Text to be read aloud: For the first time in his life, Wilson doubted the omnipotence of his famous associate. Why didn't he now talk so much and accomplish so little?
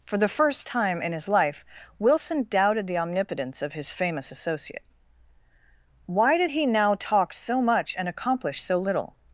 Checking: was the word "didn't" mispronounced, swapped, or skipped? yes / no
yes